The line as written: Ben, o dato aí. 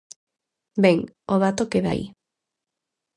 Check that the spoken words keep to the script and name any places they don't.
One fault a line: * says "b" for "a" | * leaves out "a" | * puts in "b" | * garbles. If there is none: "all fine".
* puts in "queda"